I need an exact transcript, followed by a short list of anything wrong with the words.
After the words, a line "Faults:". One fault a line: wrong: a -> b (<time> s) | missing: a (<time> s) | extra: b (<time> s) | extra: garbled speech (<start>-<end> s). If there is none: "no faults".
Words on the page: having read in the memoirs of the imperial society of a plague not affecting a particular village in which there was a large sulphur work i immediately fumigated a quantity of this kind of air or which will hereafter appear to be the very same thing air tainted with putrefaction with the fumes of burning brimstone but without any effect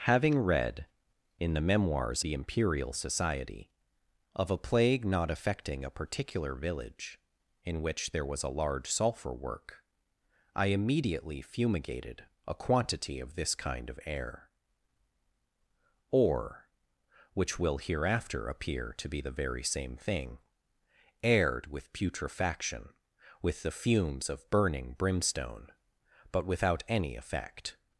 having read in the memoirs the imperial society of a plague not affecting a particular village in which there was a large sulphur work i immediately fumigated a quantity of this kind of air or which will hereafter appear to be the very same thing air with putrefaction with the fumes of burning brimstone but without any effect
Faults:
missing: of (2.2 s)
missing: tainted (21.6 s)